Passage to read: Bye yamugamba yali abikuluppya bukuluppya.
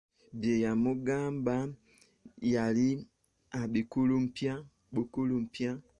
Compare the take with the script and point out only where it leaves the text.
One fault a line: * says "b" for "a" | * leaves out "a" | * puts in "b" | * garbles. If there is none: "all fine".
all fine